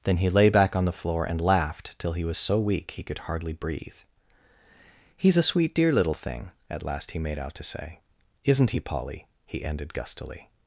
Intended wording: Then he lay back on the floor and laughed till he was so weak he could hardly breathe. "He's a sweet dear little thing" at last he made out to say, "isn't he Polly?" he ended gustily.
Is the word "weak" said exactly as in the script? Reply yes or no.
yes